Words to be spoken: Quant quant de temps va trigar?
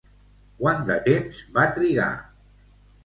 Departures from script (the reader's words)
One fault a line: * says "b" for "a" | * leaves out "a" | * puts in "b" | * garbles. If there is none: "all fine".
* leaves out "quant"